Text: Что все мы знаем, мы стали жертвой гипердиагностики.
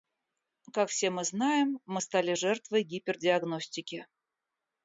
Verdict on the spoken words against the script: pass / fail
fail